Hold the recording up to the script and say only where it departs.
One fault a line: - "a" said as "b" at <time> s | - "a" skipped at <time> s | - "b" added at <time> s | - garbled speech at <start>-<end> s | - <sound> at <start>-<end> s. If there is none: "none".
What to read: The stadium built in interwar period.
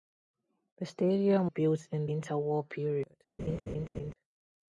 - laugh at 3.4-4.1 s